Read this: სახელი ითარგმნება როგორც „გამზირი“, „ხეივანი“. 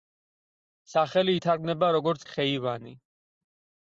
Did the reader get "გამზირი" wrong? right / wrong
wrong